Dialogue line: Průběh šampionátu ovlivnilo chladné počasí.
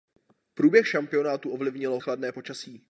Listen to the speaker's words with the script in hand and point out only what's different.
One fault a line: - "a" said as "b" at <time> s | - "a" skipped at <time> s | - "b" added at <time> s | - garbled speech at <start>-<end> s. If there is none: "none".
none